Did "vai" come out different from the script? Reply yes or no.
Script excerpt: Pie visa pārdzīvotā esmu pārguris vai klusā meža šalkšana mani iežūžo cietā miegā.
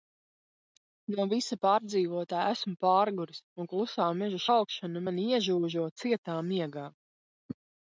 yes